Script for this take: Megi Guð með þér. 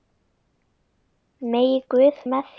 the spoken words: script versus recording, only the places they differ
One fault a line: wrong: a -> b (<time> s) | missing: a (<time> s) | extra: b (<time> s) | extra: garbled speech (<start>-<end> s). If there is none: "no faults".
no faults